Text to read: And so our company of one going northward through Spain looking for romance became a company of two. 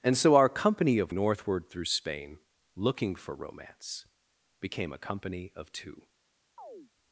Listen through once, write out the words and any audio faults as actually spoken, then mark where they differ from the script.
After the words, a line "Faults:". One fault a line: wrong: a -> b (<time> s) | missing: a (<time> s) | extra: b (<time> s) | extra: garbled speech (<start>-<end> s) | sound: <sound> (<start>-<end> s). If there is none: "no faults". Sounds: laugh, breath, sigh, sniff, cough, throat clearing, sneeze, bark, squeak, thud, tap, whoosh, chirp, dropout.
And so our company of northward through Spain looking for romance became a company of two.
Faults:
missing: one going (1.1 s)
sound: chirp (6.6-6.9 s)